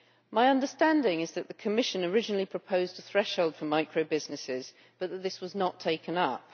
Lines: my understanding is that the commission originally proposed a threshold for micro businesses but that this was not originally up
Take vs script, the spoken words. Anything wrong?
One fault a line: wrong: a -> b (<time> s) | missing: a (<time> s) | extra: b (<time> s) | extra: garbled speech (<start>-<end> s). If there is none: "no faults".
wrong: originally -> taken (5.8 s)